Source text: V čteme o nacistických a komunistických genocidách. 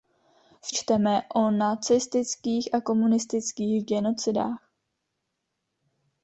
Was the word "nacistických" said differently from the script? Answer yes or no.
no